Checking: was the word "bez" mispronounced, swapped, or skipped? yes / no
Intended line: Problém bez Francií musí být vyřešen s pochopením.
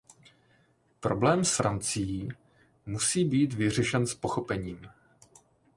yes